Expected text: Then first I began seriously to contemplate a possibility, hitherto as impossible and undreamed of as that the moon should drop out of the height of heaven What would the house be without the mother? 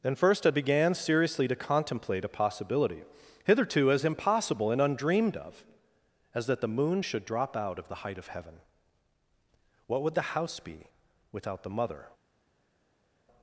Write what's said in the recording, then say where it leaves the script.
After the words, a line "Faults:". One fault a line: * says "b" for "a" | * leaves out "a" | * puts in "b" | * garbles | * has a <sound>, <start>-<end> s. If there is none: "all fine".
Then first I began seriously to contemplate a possibility, hitherto as impossible and undreamed of as that the moon should drop out of the height of heaven What would the house be without the mother?
Faults:
all fine